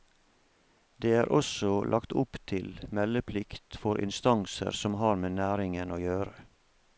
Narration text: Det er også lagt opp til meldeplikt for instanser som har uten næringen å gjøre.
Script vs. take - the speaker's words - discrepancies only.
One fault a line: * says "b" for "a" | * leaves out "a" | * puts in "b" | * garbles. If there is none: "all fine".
* says "med" for "uten"